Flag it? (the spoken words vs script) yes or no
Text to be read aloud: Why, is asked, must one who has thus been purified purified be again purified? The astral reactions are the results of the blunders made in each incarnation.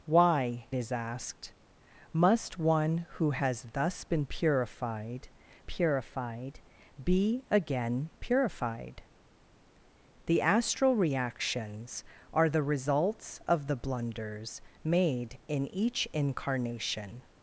no